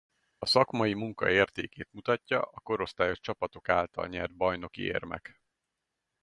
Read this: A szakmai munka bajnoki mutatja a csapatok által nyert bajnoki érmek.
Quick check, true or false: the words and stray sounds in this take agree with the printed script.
false